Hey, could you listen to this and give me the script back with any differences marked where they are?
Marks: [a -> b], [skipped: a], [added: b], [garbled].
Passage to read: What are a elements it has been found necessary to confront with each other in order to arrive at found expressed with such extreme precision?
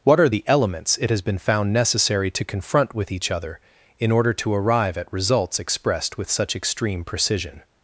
What are [a -> the] elements it has been found necessary to confront with each other in order to arrive at [found -> results] expressed with such extreme precision?